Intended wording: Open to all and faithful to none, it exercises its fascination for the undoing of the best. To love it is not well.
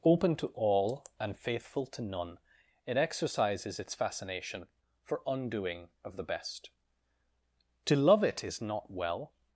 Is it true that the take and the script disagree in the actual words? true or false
true